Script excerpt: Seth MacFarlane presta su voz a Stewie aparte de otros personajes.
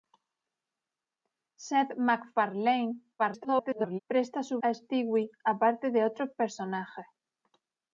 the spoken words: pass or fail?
fail